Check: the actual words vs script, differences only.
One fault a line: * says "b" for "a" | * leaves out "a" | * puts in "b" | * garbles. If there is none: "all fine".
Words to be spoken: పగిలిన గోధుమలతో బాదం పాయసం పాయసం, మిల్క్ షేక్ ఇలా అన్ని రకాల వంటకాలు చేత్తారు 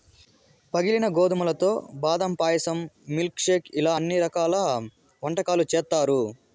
* leaves out "పాయసం"